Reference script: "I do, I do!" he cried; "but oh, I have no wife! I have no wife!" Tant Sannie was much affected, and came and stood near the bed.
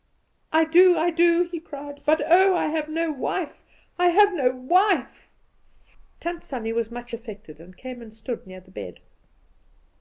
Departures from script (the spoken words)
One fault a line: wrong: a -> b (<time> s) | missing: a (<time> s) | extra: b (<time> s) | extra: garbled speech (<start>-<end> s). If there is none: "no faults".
no faults